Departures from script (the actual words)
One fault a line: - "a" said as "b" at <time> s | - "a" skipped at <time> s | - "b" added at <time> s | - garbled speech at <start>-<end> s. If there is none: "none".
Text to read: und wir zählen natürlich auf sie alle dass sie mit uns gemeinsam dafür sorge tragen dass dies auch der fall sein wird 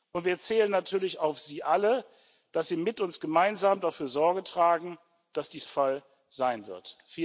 - "auch der" skipped at 5.7 s